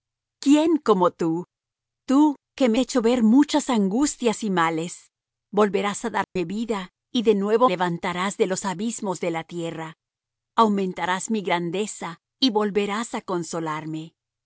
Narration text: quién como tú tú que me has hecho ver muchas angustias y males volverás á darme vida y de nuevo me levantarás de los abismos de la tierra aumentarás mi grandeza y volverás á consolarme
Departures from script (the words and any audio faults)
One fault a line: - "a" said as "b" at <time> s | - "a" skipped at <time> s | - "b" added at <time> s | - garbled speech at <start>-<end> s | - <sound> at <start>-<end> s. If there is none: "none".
- "has" skipped at 2.8 s
- dropout at 6.2-6.4 s
- "me" skipped at 7.7 s